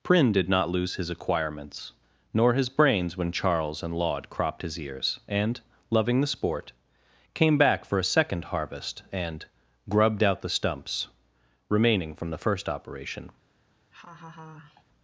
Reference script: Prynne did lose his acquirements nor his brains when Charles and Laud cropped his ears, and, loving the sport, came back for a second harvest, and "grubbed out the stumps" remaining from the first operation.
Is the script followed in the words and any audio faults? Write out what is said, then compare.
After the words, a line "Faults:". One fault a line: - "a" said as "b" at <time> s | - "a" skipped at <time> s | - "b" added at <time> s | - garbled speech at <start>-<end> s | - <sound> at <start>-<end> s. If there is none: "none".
Prynne did not lose his acquirements nor his brains when Charles and Laud cropped his ears, and, loving the sport, came back for a second harvest, and "grubbed out the stumps" remaining from the first operation.
Faults:
- "not" added at 0.5 s
- laugh at 13.9-14.8 s